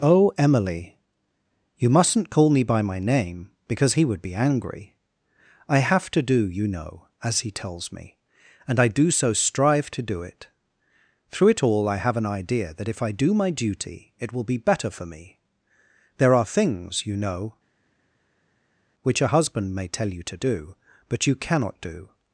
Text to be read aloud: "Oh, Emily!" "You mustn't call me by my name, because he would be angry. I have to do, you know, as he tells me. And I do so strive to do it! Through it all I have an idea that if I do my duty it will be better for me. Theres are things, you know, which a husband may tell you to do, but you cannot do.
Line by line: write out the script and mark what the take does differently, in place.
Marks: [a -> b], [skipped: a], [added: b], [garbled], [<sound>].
"Oh, Emily!" "You mustn't call me by my name, because he would be angry. I have to do, you know, as he tells me. And I do so strive to do it! Through it all I have an idea that if I do my duty it will be better for me. [Theres -> There] are things, you know, which a husband may tell you to do, but you cannot do.